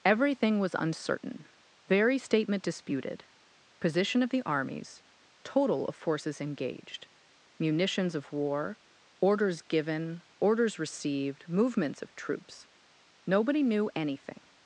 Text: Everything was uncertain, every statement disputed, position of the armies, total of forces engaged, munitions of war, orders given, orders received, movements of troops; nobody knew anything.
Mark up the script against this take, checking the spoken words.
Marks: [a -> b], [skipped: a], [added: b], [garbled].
Everything was uncertain, [every -> very] statement disputed, position of the armies, total of forces engaged, munitions of war, orders given, orders received, movements of troops; nobody knew anything.